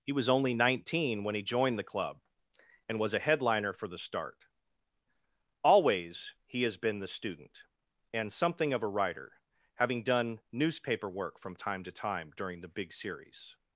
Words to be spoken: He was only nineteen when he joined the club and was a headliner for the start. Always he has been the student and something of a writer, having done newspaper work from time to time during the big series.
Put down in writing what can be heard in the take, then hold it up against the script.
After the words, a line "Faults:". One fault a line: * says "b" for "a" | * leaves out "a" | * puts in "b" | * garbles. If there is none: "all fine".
He was only nineteen when he joined the club and was a headliner for the start. Always he has been the student and something of a writer, having done newspaper work from time to time during the big series.
Faults:
all fine